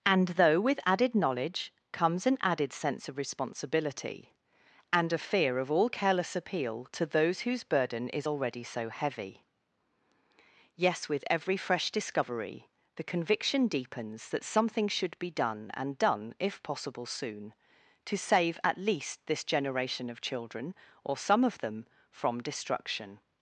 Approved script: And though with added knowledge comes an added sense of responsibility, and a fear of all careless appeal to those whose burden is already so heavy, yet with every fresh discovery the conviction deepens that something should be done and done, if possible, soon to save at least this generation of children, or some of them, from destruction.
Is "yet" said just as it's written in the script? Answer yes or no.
no